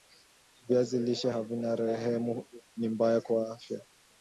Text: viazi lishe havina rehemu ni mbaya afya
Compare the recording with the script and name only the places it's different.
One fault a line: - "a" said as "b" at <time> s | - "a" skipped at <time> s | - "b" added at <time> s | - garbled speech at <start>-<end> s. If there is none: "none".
- "kwa" added at 3.2 s